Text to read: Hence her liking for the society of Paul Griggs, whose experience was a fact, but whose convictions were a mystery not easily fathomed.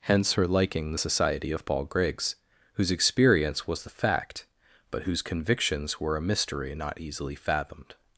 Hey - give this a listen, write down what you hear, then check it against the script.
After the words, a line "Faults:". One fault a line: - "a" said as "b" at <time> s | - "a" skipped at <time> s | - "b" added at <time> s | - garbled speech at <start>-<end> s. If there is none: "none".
Hence her liking the society of Paul Griggs, whose experience was the fact, but whose convictions were a mystery not easily fathomed.
Faults:
- "for" skipped at 0.9 s
- "a" said as "the" at 3.8 s